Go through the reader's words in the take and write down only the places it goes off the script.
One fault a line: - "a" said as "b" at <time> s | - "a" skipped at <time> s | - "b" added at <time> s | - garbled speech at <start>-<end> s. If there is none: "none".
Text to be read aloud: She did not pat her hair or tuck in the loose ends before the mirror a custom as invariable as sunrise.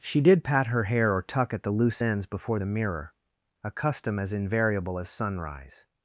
- "not" skipped at 0.4 s
- "in" said as "at" at 1.5 s